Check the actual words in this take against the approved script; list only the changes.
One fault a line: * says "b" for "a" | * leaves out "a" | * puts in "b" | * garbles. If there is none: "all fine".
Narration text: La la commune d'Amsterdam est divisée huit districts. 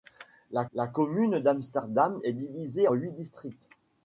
all fine